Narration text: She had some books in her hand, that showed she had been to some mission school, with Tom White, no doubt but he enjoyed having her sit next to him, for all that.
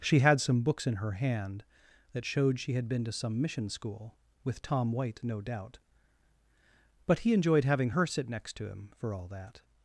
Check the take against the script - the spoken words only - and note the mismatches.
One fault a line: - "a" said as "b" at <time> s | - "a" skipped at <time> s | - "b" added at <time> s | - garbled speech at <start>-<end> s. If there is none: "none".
none